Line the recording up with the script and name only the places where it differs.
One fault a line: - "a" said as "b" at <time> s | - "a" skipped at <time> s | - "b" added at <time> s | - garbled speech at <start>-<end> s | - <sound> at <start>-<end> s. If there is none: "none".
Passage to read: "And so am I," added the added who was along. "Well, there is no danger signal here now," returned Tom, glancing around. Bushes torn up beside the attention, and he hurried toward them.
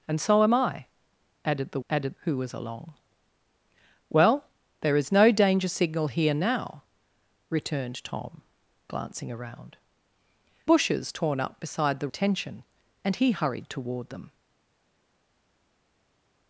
none